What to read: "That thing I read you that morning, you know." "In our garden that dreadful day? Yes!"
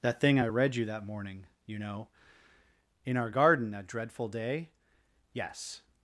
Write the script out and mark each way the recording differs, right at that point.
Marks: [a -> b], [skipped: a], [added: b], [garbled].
"That thing I read you that morning, you know." "In our garden that dreadful day? Yes!"